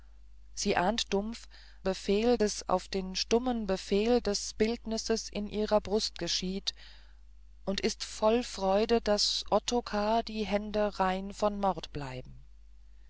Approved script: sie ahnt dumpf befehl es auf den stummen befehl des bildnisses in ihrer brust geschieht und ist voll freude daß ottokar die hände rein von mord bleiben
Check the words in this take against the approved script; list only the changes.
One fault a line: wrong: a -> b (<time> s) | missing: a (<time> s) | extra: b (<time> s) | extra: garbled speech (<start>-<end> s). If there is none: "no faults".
no faults